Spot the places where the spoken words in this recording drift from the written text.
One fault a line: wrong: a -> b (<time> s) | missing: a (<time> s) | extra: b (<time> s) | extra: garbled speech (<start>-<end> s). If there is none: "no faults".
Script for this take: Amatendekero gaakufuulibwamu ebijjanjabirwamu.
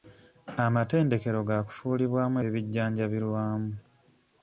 no faults